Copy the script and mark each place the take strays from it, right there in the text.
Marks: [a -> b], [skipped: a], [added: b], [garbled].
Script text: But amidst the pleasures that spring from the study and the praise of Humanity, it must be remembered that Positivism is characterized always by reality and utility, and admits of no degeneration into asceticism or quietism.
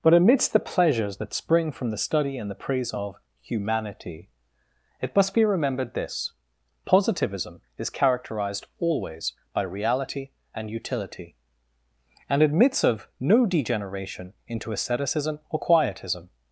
But amidst the pleasures that spring from the study and the praise of Humanity, it must be remembered [that -> this] Positivism is characterized always by reality and utility, and admits of no degeneration into asceticism or quietism.